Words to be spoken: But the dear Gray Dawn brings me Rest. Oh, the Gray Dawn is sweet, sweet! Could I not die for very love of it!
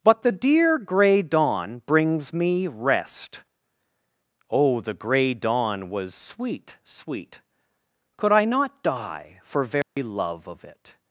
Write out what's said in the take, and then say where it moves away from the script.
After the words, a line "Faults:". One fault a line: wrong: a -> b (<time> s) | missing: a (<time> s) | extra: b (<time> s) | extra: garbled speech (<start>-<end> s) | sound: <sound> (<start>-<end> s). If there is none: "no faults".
But the dear Gray Dawn brings me Rest. Oh, the Gray Dawn was sweet, sweet! Could I not die for very love of it!
Faults:
wrong: is -> was (5.9 s)
sound: dropout (9.8-10.0 s)